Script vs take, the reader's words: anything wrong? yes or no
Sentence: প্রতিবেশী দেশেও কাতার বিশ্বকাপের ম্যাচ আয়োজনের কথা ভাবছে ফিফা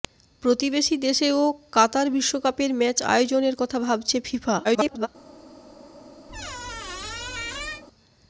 yes